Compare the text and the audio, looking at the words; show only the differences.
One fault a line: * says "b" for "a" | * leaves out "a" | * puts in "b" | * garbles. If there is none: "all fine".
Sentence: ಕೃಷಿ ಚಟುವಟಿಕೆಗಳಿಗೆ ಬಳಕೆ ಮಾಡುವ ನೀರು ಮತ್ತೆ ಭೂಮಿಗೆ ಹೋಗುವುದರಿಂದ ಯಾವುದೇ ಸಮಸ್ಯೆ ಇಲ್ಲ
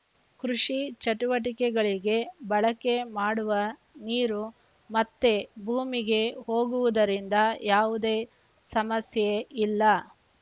all fine